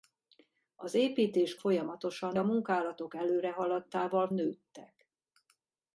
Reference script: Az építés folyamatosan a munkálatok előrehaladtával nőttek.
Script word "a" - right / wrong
right